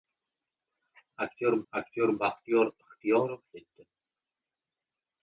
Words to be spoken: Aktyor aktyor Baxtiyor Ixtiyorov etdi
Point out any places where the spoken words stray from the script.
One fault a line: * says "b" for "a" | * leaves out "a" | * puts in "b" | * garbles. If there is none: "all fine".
all fine